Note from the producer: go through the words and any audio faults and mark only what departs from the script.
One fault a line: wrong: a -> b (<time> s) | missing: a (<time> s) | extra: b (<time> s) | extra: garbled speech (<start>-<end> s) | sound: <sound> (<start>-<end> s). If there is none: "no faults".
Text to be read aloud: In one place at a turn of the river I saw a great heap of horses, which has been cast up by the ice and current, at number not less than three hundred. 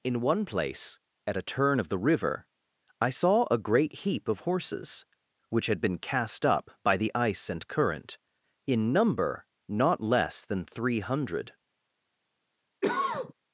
wrong: has -> had (5.7 s)
wrong: at -> in (8.6 s)
sound: cough (12.8-13.3 s)